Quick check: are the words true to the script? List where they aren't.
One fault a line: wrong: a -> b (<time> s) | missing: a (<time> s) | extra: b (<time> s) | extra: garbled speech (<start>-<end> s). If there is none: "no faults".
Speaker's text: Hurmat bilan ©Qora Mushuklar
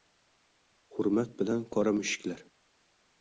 no faults